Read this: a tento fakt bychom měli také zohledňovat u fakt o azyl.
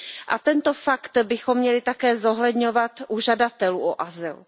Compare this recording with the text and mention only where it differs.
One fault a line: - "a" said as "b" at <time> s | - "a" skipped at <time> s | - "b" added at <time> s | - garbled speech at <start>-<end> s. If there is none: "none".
- "fakt" said as "žadatelů" at 3.2 s